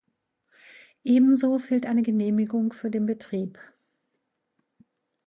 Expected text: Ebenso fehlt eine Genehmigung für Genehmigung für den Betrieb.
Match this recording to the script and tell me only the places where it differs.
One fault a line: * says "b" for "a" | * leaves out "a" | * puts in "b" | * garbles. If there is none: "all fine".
* leaves out "Genehmigung für"